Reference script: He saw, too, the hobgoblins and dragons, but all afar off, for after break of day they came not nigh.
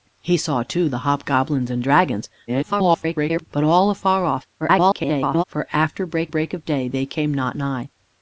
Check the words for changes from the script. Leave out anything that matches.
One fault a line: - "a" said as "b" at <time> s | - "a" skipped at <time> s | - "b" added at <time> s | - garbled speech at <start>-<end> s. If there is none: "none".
- garbled speech at 2.5-3.5 s
- garbled speech at 4.6-5.4 s
- "break" added at 6.3 s